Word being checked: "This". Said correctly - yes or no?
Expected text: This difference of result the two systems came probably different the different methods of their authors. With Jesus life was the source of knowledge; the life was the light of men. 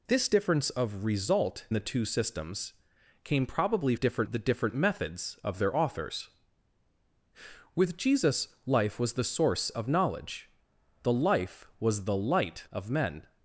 yes